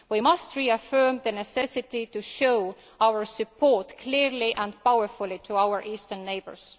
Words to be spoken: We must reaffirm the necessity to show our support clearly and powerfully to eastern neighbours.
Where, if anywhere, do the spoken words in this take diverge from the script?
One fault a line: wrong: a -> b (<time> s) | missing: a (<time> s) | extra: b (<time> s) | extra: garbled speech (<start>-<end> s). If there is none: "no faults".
extra: our (5.6 s)